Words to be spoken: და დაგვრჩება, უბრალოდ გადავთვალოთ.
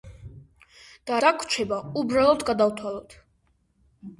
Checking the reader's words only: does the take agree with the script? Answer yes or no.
yes